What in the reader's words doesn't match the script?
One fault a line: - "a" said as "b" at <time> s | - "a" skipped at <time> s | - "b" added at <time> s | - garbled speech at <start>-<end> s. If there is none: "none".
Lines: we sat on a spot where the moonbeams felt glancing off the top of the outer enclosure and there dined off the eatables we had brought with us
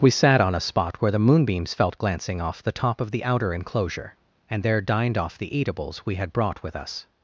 none